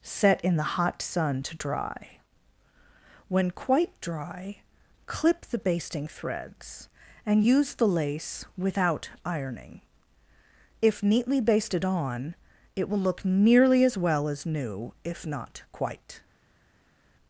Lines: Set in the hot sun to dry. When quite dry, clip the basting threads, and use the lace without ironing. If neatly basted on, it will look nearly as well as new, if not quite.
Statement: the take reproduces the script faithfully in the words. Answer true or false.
true